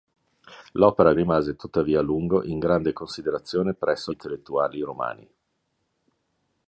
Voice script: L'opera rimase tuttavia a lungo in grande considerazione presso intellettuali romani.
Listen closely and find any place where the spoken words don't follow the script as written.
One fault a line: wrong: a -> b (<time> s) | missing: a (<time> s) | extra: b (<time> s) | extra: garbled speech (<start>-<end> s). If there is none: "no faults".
no faults